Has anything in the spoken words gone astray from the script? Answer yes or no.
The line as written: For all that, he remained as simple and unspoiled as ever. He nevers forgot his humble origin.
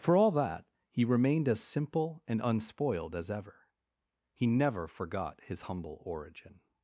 yes